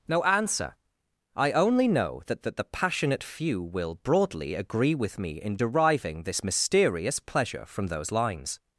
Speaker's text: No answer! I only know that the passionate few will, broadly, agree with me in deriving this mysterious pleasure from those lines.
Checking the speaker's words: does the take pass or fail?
fail